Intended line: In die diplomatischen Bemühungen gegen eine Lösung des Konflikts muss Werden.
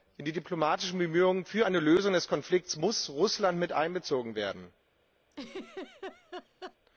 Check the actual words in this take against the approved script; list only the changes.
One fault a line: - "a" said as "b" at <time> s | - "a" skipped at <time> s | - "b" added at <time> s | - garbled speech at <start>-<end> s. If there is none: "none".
- "gegen" said as "für" at 1.4 s
- "Russland mit einbezogen" added at 3.1 s